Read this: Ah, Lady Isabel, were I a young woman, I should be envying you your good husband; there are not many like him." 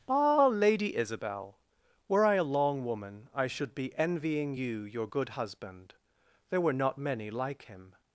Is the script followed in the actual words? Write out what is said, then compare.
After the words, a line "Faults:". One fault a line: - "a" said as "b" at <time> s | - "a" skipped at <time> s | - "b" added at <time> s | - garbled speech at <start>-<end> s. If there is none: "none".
Ah, Lady Isabel, were I a long woman, I should be envying you your good husband; there were not many like him."
Faults:
- "young" said as "long" at 2.4 s
- "are" said as "were" at 6.6 s